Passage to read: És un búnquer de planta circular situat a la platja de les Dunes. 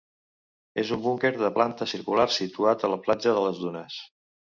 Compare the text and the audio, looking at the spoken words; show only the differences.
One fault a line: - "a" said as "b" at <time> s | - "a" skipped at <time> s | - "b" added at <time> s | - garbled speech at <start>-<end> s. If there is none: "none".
none